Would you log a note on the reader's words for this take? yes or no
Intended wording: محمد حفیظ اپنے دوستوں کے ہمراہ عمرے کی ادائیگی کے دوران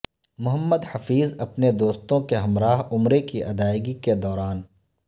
no